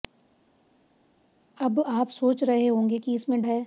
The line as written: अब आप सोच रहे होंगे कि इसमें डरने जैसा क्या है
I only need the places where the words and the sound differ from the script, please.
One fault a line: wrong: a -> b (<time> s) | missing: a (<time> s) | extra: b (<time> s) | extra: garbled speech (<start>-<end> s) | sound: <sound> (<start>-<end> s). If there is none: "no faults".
missing: डरने जैसा क्या (3.4 s)